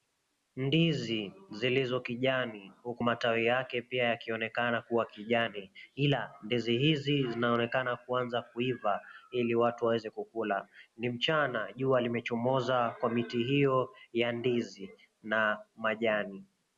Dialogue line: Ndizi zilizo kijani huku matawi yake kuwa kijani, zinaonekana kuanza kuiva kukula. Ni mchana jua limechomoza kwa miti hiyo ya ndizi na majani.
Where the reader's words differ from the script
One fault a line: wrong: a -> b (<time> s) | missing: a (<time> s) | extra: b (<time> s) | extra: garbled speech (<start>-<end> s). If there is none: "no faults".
extra: pia yakionekana (3.8 s)
extra: ila ndizi hizi (5.9 s)
extra: ili watu waweze (9.3 s)